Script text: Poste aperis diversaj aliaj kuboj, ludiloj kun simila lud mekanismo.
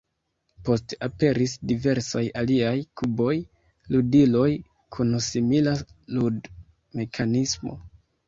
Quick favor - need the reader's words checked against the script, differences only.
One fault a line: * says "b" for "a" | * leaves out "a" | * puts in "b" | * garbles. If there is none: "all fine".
all fine